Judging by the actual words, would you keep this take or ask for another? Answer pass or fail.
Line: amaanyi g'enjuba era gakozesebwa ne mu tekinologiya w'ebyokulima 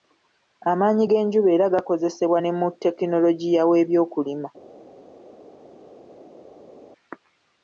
pass